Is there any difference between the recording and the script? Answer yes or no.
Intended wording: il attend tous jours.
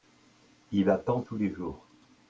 yes